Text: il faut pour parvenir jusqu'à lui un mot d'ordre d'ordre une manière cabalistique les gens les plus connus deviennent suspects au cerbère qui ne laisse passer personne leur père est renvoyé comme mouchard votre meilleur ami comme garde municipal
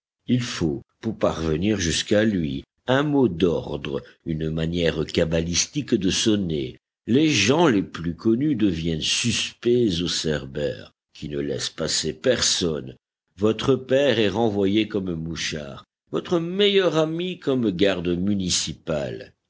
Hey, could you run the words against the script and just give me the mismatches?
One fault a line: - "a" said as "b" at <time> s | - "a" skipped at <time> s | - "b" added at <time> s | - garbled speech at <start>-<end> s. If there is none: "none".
- "d'ordre" skipped at 4.0 s
- "de sonner" added at 5.9 s
- "leur" said as "votre" at 13.4 s